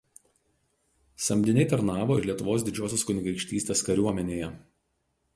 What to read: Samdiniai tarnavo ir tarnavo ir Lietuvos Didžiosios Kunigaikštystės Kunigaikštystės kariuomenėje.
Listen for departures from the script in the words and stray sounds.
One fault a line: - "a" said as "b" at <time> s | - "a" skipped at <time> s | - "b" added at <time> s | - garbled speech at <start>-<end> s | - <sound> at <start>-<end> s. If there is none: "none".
- "tarnavo ir" skipped at 2.3 s
- "Kunigaikštystės" skipped at 3.9 s